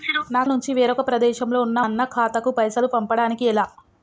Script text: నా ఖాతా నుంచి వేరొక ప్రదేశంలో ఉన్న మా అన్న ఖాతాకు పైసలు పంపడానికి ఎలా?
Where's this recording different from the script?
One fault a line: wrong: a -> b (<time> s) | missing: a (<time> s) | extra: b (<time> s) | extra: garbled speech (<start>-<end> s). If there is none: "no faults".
missing: ఖాతా (0.4 s)
missing: మా (1.8 s)